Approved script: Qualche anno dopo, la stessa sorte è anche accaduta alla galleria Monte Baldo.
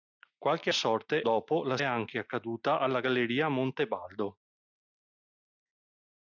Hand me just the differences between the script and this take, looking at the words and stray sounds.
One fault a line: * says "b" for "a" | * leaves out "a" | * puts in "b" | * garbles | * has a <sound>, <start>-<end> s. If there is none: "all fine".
* says "sorte" for "anno"
* leaves out "stessa sorte è"